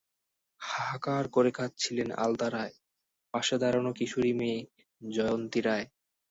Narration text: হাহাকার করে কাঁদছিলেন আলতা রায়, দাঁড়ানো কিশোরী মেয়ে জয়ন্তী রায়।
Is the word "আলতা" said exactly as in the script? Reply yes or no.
yes